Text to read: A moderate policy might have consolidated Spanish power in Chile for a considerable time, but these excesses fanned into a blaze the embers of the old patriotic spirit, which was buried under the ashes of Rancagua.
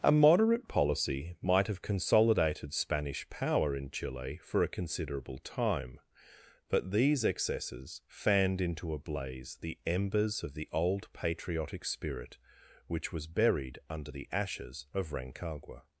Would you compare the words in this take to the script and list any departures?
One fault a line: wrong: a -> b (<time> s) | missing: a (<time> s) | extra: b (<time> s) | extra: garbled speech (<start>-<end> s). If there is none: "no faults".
no faults